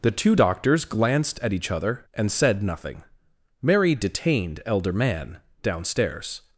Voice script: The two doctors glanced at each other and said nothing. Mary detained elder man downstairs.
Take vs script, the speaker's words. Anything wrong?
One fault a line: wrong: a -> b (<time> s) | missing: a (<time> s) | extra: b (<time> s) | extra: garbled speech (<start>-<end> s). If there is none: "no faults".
no faults